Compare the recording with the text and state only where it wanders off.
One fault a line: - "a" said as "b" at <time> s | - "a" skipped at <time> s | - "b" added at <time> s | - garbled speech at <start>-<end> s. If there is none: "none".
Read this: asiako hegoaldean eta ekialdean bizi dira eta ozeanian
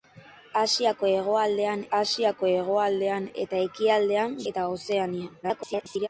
- "asiako hegoaldean" added at 2.0 s
- "bizi dira" skipped at 4.3 s
- garbled speech at 5.4-6.1 s